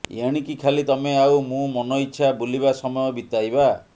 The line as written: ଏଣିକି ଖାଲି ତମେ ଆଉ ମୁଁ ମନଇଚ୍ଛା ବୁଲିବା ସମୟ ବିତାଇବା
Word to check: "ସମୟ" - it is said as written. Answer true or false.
true